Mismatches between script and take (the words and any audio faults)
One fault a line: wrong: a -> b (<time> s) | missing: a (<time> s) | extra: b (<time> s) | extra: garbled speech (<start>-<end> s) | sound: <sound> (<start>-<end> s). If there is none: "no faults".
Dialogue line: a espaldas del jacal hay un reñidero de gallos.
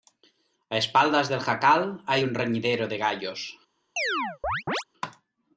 sound: chirp (4.0-4.8 s)